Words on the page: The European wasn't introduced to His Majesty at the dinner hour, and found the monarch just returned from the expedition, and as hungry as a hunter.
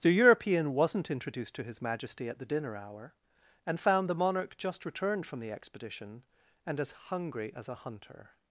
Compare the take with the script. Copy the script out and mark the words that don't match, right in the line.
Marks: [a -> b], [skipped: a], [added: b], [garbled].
The European wasn't introduced to His Majesty at the dinner hour, and found the monarch just returned from the expedition, and as hungry as a hunter.